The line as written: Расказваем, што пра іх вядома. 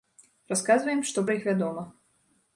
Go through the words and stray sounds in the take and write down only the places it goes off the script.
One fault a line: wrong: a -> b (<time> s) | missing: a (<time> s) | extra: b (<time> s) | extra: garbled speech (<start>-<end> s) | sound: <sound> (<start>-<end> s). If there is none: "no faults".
no faults